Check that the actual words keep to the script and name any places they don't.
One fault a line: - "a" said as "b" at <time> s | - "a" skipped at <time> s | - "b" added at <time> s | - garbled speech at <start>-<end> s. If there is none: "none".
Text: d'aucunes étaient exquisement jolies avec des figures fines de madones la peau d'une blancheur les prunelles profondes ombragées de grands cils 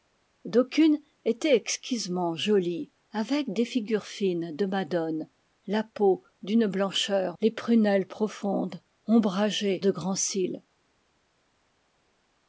none